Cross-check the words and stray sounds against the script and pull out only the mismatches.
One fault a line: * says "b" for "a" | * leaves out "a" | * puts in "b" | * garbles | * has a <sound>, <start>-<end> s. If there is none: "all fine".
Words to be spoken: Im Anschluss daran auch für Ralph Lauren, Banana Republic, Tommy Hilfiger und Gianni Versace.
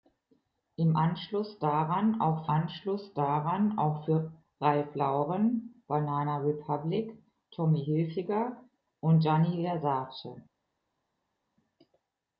* puts in "Anschluss daran auch"